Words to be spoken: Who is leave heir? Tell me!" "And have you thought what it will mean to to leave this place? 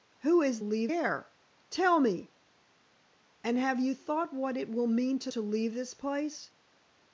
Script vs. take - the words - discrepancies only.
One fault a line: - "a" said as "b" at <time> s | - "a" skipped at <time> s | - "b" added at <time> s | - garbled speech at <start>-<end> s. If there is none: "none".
none